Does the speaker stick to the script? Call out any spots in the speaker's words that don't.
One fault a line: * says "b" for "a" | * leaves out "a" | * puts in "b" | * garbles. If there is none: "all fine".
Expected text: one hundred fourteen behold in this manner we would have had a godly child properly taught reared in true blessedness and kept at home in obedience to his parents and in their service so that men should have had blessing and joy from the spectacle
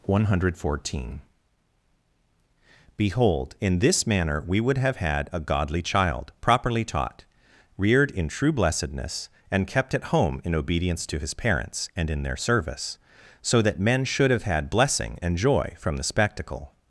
all fine